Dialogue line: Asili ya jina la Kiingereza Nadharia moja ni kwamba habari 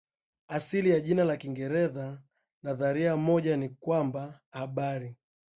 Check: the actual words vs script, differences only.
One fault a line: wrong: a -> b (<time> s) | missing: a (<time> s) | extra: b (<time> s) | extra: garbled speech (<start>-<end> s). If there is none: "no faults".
no faults